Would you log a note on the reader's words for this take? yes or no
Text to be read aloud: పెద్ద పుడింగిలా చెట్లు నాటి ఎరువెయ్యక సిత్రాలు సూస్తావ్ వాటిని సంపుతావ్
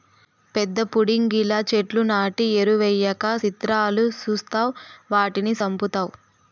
no